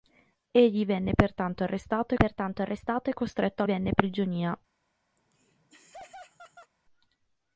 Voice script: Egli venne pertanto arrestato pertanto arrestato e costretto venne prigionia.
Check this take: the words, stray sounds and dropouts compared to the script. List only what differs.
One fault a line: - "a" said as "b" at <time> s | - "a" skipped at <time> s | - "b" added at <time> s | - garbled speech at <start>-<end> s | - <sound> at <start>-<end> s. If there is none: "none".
- laugh at 5.2-6.7 s